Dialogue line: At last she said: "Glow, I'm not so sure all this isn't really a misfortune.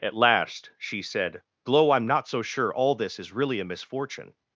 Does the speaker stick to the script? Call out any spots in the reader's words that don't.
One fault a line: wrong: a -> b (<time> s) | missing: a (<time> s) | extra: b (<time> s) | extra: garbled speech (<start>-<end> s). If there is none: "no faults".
wrong: isn't -> is (3.2 s)